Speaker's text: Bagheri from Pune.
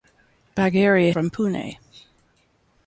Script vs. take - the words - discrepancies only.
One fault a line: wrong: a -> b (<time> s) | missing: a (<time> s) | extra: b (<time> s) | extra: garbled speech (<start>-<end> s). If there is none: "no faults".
no faults